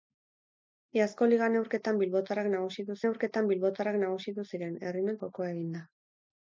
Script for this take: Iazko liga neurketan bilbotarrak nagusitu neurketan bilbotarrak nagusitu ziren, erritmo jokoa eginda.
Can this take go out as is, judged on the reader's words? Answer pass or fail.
pass